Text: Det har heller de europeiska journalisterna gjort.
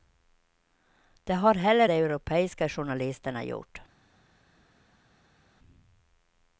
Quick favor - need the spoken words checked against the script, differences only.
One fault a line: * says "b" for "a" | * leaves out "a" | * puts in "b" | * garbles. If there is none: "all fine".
all fine